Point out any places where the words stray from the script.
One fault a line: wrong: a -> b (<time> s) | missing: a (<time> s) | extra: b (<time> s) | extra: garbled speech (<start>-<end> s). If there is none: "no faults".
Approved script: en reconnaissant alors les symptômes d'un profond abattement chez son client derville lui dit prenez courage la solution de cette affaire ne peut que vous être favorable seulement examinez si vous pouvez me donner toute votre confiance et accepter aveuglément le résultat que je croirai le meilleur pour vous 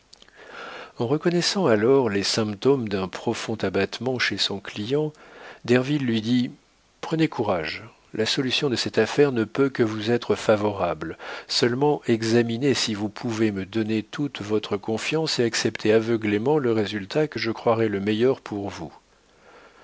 no faults